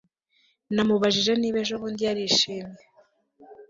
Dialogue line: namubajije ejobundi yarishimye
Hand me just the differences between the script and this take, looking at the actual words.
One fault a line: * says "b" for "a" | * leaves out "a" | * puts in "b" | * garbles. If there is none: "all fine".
* puts in "niba"